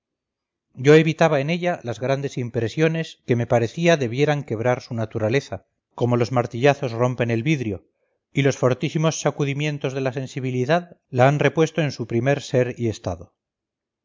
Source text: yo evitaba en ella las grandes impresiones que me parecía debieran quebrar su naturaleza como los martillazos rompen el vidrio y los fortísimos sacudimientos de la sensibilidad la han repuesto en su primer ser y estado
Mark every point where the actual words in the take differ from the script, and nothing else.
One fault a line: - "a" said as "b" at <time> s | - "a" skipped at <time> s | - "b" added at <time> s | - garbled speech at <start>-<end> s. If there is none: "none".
none